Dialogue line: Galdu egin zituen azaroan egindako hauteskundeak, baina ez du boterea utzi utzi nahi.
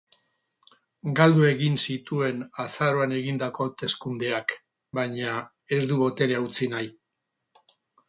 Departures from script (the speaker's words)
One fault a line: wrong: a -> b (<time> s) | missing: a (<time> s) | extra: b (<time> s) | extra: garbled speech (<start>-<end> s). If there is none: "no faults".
missing: utzi (6.7 s)